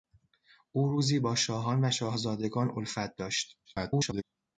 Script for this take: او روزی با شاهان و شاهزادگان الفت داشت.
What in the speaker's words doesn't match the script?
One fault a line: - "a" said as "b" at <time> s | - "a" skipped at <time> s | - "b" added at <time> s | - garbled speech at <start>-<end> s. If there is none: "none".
- garbled speech at 3.6-4.2 s